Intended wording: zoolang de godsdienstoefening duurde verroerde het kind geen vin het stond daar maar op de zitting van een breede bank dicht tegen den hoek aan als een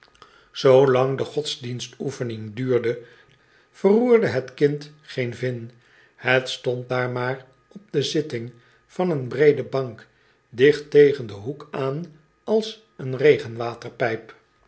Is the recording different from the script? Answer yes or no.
no